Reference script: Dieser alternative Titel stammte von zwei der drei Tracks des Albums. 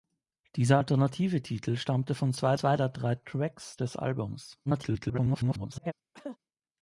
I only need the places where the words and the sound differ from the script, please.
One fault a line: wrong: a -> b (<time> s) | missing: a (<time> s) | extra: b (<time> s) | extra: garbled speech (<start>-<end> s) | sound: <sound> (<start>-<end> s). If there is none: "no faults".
extra: zwei (2.5 s)
extra: garbled speech (4.7-5.9 s)
sound: cough (6.1-6.4 s)